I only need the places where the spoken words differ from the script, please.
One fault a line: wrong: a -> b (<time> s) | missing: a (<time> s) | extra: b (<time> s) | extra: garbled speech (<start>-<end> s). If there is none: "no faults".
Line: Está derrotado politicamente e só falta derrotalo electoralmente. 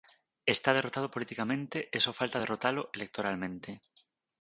no faults